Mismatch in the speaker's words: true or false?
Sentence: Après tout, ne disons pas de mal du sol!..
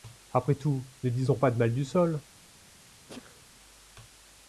false